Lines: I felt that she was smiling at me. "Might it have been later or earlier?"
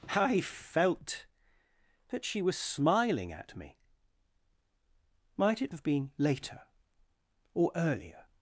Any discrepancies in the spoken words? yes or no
no